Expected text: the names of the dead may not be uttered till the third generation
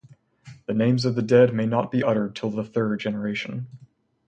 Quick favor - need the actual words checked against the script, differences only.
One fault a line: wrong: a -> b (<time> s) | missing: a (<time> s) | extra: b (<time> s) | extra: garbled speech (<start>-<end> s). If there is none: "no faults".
no faults